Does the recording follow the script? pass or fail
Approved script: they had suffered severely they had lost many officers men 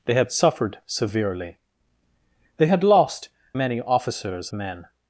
pass